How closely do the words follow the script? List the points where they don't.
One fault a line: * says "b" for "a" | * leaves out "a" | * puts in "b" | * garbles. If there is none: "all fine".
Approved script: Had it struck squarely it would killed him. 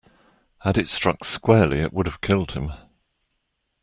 * puts in "have"